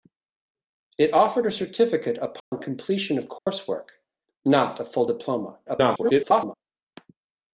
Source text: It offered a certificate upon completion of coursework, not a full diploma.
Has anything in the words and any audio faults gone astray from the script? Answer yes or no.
yes